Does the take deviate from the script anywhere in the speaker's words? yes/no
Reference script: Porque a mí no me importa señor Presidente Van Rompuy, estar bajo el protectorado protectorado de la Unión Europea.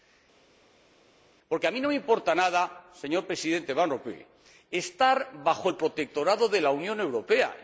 yes